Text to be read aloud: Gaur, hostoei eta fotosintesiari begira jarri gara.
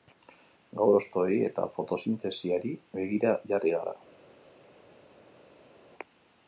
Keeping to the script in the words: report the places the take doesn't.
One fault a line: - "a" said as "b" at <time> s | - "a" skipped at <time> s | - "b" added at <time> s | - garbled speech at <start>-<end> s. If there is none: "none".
none